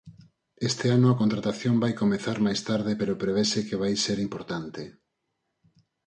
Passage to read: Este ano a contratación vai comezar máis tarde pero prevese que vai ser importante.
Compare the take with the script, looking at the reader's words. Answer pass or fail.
pass